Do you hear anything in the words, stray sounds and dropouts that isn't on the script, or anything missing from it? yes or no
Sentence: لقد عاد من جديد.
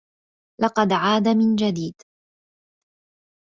no